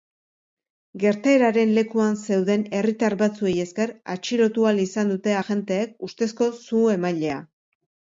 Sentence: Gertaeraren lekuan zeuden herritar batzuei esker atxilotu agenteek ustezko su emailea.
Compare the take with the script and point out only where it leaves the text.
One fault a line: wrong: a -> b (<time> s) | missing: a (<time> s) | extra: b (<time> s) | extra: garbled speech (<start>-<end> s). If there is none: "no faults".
extra: ahal izan dute (4.7 s)